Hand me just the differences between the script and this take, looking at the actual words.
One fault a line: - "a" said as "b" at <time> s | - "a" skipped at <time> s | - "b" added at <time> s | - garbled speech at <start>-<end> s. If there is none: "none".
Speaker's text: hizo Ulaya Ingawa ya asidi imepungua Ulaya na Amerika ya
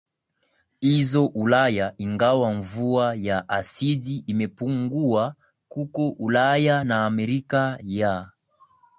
- "mvua" added at 2.5 s
- "huko" added at 5.7 s